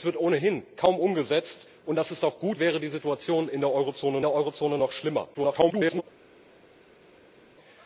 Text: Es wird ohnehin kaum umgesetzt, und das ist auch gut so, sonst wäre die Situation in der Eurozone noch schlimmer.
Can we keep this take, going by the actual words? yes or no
no